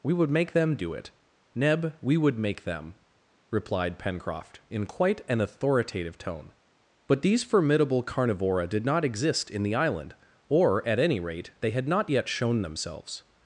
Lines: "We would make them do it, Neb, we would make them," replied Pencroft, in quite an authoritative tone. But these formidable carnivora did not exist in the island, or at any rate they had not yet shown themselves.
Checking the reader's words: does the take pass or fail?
pass